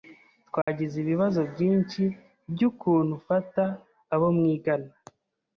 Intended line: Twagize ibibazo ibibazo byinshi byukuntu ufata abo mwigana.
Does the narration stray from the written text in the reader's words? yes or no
yes